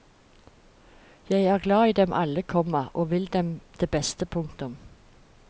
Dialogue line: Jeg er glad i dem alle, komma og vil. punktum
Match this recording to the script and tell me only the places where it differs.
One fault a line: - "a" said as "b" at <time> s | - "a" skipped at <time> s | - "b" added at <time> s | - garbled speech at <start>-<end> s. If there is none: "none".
- "dem det beste" added at 3.3 s